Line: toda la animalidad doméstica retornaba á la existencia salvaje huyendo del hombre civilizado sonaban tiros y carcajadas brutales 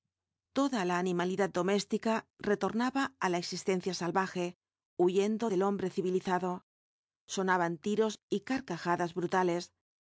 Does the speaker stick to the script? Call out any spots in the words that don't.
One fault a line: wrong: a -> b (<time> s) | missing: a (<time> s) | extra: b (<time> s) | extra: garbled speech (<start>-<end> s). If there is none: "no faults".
no faults